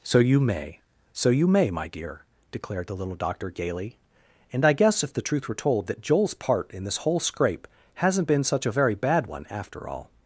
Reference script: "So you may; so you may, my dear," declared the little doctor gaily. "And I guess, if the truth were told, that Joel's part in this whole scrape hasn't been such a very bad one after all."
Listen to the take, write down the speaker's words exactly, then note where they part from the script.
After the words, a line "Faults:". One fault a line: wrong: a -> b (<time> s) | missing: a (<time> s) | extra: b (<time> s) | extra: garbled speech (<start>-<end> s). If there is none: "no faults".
"So you may; so you may, my dear," declared the little doctor gaily. "And I guess, if the truth were told, that Joel's part in this whole scrape hasn't been such a very bad one after all."
Faults:
no faults